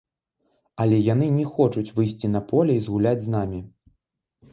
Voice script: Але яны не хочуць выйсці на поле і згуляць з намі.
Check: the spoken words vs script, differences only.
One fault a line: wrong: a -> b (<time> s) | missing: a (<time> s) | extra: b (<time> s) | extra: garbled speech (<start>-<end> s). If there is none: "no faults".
no faults